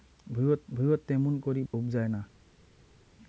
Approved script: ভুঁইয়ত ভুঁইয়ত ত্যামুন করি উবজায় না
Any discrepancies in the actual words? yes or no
no